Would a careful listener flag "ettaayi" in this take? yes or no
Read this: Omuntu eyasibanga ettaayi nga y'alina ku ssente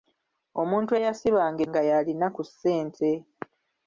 yes